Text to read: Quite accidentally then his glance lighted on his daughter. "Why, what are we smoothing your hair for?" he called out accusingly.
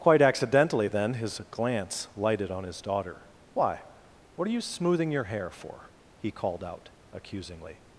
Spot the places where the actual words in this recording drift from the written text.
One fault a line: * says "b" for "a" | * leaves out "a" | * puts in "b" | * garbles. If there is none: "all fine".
* says "you" for "we"